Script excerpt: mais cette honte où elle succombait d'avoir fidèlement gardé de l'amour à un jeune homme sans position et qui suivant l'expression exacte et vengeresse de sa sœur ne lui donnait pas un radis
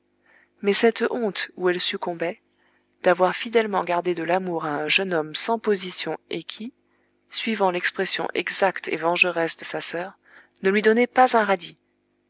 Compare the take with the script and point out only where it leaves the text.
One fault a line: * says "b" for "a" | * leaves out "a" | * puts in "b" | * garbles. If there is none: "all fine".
all fine